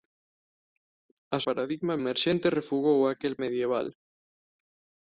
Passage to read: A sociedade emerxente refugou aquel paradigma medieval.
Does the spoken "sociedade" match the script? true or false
false